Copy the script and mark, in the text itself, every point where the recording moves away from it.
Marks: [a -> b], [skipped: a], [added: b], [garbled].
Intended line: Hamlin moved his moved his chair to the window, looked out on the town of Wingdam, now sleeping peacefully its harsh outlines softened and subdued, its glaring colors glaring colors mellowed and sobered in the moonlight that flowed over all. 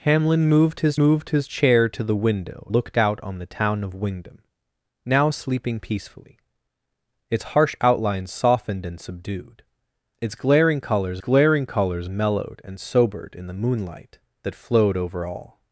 Hamlin moved his moved his chair to the window, looked out on the town of Wingdam, now sleeping peacefully its harsh outlines softened and subdued, its glaring colors glaring colors mellowed and sobered in the moonlight that flowed over all.